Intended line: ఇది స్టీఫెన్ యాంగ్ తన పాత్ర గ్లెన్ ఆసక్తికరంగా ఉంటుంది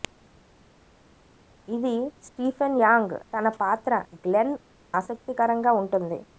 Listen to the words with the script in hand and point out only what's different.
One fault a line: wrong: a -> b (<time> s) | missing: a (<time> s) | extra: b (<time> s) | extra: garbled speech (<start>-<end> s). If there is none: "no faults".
no faults